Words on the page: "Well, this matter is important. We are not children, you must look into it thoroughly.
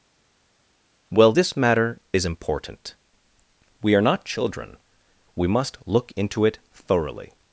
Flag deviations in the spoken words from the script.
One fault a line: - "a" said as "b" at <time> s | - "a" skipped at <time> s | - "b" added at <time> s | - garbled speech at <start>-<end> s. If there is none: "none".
- "you" said as "we" at 5.4 s